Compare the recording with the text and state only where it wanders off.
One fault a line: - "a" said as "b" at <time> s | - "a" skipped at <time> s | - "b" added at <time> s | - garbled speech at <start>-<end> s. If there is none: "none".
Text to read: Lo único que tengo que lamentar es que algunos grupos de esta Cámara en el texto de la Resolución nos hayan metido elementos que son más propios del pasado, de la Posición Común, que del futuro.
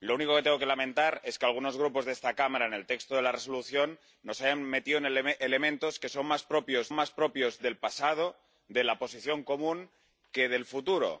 - "más propios" added at 6.9 s